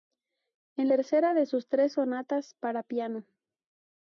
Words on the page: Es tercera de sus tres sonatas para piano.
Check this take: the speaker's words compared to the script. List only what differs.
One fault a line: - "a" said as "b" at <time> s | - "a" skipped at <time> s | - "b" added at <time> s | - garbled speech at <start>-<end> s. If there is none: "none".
none